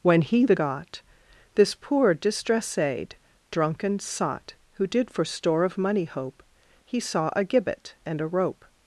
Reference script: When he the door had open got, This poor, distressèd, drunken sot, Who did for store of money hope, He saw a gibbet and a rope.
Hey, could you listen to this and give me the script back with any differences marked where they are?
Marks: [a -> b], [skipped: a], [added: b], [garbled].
When he the [skipped: door had open] got, This poor, distressèd, drunken sot, Who did for store of money hope, He saw a gibbet and a rope.